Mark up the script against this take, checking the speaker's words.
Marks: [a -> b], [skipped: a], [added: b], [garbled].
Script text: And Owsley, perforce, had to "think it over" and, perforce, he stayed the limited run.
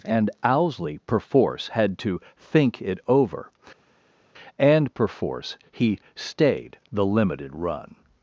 And Owsley, perforce, had to "think it over" and, perforce, he stayed the limited run.